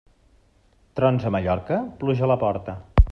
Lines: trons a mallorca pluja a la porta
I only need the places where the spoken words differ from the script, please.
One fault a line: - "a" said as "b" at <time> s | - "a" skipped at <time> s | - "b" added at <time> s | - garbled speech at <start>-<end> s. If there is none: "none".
none